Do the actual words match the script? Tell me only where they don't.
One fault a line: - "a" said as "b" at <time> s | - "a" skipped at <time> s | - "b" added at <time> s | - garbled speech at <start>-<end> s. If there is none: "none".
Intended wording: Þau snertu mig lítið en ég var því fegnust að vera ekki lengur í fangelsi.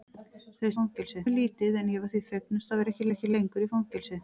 - "snertu" said as "fangelsi" at 0.8 s
- "vera ekki" added at 3.0 s